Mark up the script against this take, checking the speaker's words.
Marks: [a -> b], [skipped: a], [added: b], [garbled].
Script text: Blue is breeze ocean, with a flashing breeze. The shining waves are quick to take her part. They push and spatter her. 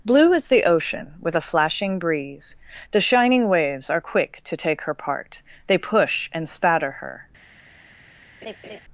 Blue is [breeze -> the] ocean, with a flashing breeze. The shining waves are quick to take her part. They push and spatter her.